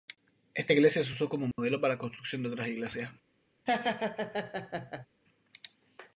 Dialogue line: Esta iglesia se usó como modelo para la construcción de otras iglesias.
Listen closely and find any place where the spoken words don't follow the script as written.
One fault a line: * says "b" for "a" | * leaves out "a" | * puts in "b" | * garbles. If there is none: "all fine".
all fine